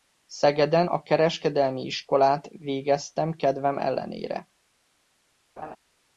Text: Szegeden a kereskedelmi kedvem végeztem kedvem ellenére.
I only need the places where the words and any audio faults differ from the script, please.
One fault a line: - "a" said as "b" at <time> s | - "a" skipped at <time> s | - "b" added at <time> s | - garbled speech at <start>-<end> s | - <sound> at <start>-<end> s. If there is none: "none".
- "kedvem" said as "iskolát" at 1.8 s
- laugh at 5.6-5.8 s